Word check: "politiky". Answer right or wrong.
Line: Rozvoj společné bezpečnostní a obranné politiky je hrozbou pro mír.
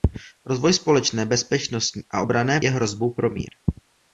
wrong